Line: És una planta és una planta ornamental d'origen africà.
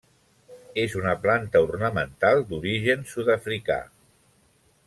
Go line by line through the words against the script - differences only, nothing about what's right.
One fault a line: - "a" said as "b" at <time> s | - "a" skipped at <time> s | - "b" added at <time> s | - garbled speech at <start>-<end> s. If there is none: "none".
- "és una planta" skipped at 1.6 s
- "sud" added at 3.1 s